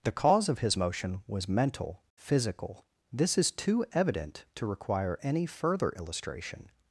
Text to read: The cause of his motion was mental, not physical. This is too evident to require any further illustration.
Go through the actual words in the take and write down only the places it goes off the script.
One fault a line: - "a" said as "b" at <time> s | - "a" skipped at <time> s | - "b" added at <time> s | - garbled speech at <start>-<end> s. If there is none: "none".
- "not" skipped at 2.0 s